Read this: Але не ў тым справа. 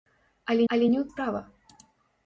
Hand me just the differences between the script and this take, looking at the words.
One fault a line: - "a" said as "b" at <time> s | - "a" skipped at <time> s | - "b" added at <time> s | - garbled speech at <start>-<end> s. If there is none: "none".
- "але" added at 0.7 s
- "тым" skipped at 1.0 s